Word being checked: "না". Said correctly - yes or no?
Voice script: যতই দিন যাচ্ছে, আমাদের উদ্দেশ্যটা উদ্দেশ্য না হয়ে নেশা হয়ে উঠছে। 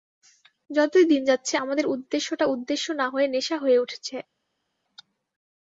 yes